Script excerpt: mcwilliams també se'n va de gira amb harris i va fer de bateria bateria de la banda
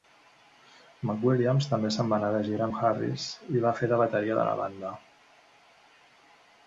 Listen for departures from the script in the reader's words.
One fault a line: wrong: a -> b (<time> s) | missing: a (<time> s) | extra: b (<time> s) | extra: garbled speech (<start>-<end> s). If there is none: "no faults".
extra: anar (2.2 s)
missing: bateria (4.4 s)